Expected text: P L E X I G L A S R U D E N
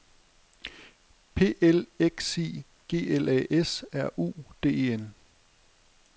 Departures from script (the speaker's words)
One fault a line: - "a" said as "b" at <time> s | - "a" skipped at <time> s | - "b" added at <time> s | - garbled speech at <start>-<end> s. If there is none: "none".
none